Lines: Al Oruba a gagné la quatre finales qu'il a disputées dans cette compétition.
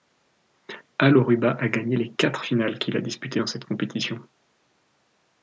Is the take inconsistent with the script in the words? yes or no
yes